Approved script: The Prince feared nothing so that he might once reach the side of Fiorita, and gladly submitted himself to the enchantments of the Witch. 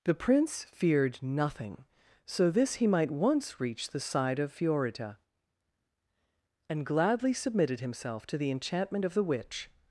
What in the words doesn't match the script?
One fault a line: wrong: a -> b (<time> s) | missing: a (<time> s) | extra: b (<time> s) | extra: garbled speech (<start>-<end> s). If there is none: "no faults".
wrong: that -> this (2.5 s)
wrong: enchantments -> enchantment (8.5 s)